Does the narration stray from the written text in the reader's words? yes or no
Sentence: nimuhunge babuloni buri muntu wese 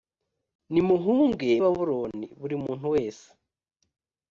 no